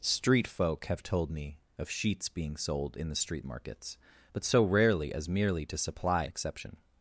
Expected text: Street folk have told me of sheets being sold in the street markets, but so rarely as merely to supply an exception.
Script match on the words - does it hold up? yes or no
no